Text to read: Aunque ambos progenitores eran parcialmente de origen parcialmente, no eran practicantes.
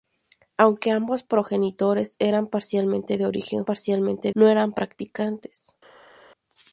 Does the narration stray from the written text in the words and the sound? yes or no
no